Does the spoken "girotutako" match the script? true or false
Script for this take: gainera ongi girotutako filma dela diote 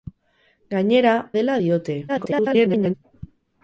false